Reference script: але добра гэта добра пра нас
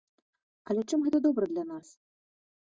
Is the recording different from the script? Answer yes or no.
yes